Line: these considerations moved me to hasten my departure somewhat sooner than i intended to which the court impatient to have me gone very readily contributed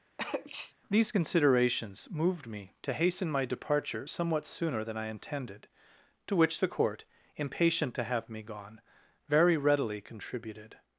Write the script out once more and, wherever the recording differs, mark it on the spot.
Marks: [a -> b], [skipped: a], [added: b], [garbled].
these considerations moved me to hasten my departure somewhat sooner than i intended to which the court impatient to have me gone very readily contributed